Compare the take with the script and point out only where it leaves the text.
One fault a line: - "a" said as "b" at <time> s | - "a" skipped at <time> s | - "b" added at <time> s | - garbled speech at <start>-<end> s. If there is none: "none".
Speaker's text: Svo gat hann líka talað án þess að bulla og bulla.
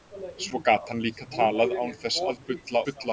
- "og" skipped at 2.9 s